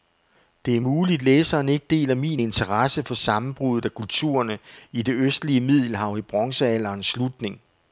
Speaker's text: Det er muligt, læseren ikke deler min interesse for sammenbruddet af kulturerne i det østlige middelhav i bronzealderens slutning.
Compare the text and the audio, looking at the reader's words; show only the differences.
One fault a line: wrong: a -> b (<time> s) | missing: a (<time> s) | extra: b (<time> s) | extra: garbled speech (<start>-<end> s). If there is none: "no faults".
no faults